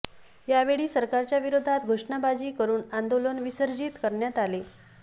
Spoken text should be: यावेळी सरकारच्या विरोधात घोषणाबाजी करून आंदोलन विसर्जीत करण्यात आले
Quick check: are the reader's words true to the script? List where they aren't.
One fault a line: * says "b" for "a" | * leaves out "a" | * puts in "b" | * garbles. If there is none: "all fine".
all fine